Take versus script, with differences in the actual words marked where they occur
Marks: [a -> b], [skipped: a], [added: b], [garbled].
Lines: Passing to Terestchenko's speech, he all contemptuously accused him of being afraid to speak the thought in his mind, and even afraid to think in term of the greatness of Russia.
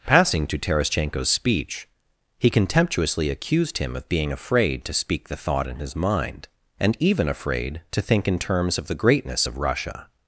Passing to Terestchenko's speech, he [skipped: all] contemptuously accused him of being afraid to speak the thought in his mind, and even afraid to think in [term -> terms] of the greatness of Russia.